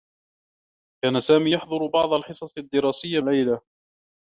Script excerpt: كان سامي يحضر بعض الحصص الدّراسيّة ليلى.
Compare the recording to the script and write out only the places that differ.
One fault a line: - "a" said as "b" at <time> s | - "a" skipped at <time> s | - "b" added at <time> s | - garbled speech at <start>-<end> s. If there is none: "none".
none